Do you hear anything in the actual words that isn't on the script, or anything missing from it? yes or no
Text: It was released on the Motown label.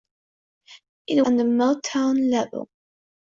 yes